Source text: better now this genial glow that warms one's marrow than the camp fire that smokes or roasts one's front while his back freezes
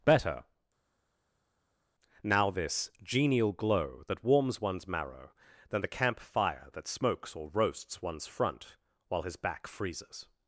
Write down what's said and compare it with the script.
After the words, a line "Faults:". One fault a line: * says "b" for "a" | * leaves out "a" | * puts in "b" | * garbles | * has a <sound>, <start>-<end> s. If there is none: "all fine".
better now this genial glow that warms one's marrow than the camp fire that smokes or roasts one's front while his back freezes
Faults:
all fine